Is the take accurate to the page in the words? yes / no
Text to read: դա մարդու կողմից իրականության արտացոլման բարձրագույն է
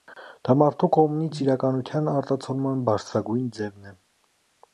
no